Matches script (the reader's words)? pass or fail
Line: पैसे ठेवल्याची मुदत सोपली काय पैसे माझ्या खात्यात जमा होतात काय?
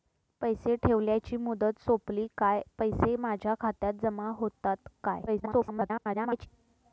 fail